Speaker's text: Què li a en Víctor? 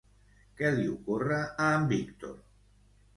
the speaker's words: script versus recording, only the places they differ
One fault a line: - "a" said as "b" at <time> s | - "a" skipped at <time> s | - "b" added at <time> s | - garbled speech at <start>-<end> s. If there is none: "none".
- "ocorre" added at 0.9 s